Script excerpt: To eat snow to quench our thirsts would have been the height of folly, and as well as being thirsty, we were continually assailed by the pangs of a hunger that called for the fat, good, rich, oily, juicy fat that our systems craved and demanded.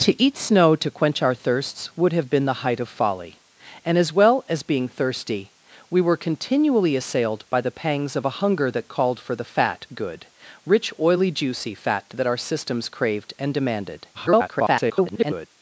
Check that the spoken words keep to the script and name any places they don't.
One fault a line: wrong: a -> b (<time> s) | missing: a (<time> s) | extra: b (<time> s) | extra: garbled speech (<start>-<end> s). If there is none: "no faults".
extra: garbled speech (14.1-15.5 s)